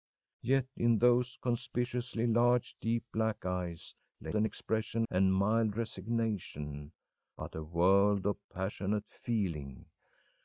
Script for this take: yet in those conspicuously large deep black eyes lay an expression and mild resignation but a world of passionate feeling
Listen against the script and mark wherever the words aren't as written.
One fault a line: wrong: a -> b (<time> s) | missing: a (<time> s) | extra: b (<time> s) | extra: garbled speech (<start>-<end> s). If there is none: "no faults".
no faults